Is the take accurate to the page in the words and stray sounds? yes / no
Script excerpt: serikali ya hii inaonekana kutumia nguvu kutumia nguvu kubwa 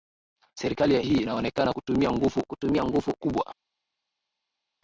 yes